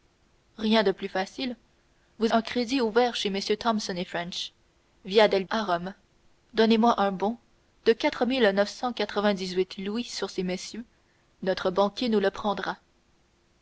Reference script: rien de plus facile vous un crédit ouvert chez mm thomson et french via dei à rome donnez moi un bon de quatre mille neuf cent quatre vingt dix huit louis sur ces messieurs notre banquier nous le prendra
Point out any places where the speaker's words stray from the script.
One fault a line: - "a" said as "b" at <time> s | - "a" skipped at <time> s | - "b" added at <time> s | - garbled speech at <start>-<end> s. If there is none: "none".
none